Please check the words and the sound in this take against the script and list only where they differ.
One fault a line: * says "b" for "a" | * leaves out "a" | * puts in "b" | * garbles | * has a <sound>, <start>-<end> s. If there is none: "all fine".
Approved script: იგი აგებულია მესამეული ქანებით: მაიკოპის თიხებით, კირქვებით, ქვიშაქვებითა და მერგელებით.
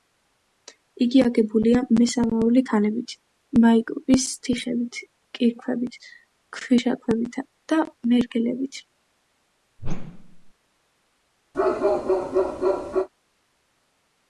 * has a whoosh, 9.8-10.5 s
* has a bark, 11.5-13.1 s